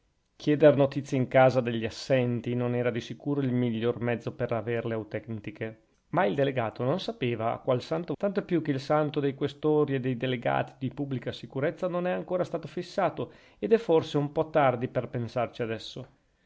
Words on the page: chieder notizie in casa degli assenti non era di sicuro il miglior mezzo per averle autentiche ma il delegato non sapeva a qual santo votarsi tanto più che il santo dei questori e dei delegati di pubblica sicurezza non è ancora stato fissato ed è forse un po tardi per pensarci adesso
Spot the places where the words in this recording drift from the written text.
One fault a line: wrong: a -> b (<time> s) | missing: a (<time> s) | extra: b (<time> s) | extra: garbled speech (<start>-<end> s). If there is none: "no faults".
missing: votarsi (8.2 s)